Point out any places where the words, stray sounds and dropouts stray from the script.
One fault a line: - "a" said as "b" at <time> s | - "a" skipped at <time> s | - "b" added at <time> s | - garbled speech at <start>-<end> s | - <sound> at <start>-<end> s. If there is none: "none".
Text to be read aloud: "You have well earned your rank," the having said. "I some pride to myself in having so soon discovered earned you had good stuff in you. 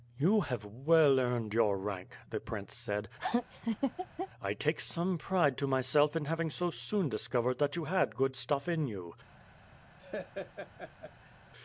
- "having" said as "prince" at 2.4 s
- laugh at 3.2-4.3 s
- "take" added at 4.5 s
- "earned" said as "that" at 7.6 s
- laugh at 10.0-11.4 s